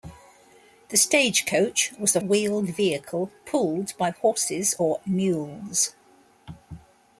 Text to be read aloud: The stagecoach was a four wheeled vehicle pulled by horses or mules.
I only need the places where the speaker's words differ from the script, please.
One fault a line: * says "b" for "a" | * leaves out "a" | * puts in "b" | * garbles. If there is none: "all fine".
* leaves out "four"